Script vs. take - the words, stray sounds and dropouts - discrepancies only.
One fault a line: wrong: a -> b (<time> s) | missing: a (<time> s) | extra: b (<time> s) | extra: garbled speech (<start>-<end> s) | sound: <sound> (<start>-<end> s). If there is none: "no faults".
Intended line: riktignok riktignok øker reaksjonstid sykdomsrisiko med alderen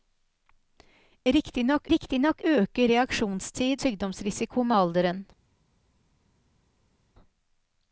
no faults